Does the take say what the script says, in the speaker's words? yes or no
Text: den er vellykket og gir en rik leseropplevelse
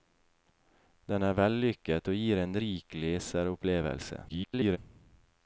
no